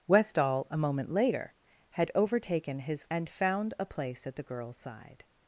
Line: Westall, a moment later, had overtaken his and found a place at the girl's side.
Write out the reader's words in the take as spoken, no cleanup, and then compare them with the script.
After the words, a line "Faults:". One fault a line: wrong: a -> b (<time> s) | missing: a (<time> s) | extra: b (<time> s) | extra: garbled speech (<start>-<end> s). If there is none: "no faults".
Westall, a moment later, had overtaken his and found a place at the girl's side.
Faults:
no faults